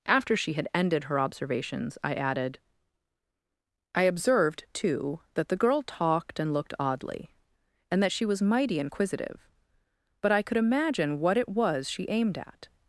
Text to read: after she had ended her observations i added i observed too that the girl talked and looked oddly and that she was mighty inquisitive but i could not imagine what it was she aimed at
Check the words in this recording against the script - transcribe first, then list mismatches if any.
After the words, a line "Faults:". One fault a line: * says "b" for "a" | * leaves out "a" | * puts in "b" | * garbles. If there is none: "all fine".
after she had ended her observations i added i observed too that the girl talked and looked oddly and that she was mighty inquisitive but i could imagine what it was she aimed at
Faults:
* leaves out "not"